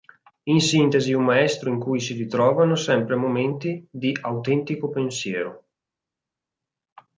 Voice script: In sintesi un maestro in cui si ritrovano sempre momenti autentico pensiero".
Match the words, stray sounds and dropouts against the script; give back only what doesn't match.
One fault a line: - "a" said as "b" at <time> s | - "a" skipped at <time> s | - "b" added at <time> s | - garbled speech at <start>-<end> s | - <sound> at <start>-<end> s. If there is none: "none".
- "di" added at 3.9 s